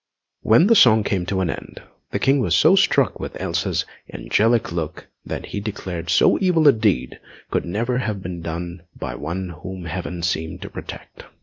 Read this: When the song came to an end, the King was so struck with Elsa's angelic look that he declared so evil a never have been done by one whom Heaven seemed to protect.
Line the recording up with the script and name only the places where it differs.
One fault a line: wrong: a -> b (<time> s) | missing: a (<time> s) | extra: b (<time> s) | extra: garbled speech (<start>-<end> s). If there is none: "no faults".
extra: deed could (6.7 s)